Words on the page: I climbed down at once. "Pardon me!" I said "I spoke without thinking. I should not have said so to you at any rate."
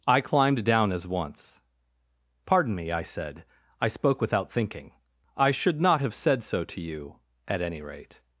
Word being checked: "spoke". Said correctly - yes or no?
yes